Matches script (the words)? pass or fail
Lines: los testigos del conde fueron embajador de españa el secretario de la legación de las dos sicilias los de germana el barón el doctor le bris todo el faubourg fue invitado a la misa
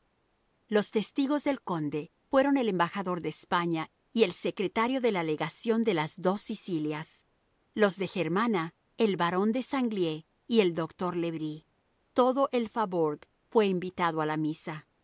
fail